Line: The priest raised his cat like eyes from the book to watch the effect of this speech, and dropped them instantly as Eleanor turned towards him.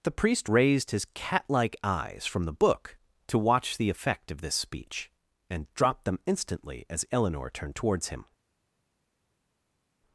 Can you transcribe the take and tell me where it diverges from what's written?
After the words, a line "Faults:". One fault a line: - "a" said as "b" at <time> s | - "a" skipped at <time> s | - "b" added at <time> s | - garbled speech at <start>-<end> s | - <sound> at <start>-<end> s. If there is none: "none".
The priest raised his cat like eyes from the book to watch the effect of this speech, and dropped them instantly as Eleanor turned towards him.
Faults:
none